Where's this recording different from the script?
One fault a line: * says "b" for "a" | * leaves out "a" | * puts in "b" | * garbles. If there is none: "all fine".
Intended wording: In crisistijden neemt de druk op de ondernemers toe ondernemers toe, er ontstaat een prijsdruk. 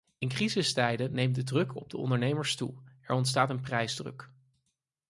* leaves out "ondernemers toe"